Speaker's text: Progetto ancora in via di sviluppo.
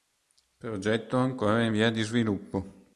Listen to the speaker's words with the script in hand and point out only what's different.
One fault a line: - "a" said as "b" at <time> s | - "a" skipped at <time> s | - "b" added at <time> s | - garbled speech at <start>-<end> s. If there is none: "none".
none